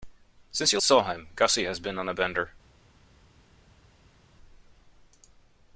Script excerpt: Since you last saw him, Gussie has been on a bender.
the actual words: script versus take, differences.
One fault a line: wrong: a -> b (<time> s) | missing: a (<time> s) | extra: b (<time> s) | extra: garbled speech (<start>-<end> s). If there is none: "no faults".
missing: last (0.8 s)